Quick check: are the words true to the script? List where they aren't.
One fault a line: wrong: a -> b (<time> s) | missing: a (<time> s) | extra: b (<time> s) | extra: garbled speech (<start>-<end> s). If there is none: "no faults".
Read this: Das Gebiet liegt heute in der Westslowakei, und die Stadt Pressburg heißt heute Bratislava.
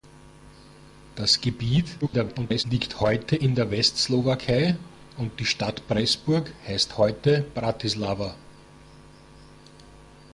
extra: garbled speech (2.0-2.6 s)